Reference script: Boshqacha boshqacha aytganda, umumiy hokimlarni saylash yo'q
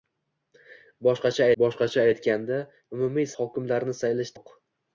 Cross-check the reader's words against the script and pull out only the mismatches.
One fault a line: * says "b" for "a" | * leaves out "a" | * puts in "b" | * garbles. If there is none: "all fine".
all fine